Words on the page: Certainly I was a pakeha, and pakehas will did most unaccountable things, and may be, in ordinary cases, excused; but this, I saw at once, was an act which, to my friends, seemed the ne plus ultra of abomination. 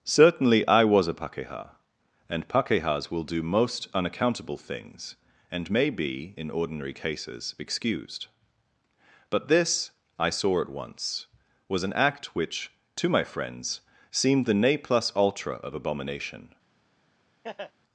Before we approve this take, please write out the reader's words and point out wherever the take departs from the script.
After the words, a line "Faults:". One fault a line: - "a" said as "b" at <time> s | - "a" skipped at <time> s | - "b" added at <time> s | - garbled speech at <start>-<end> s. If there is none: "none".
Certainly I was a pakeha, and pakehas will do most unaccountable things, and may be, in ordinary cases, excused; but this, I saw at once, was an act which, to my friends, seemed the ne plus ultra of abomination.
Faults:
- "did" said as "do" at 3.2 s